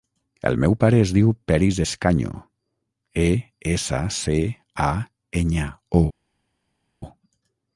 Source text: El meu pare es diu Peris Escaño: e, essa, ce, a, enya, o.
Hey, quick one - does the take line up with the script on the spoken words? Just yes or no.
yes